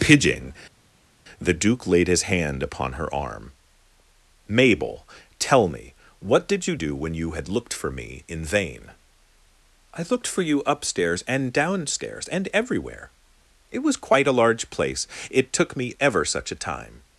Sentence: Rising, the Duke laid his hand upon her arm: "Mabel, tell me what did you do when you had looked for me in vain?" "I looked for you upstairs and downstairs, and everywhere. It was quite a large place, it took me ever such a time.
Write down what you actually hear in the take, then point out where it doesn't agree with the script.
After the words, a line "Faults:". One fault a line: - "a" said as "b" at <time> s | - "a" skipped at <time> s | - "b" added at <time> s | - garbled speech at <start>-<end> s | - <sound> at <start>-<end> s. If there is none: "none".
Pidging, the Duke laid his hand upon her arm: "Mabel, tell me what did you do when you had looked for me in vain?" "I looked for you upstairs and downstairs, and everywhere. It was quite a large place, it took me ever such a time.
Faults:
- "Rising" said as "Pidging" at 0.0 s